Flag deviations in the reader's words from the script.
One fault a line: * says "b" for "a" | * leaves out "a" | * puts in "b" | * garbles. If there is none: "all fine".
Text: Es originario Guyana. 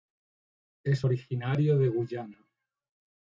* puts in "de"